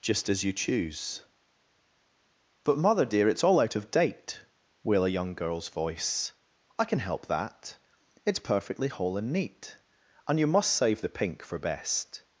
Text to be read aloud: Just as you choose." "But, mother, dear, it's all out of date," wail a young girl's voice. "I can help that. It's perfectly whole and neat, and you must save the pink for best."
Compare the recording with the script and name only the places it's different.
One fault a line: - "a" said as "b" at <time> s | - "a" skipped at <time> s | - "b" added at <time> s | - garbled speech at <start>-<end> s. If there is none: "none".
none